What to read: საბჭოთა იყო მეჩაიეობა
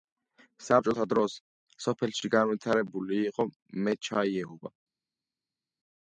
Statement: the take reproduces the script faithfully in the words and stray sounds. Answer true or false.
false